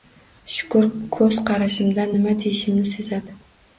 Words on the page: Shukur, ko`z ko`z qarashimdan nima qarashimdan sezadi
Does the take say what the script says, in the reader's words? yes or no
no